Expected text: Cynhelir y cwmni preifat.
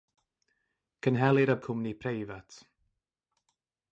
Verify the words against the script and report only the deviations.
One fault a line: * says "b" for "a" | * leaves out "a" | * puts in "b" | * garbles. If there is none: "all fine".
all fine